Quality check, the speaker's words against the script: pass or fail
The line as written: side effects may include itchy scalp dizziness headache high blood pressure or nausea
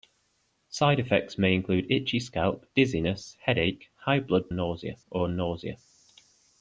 fail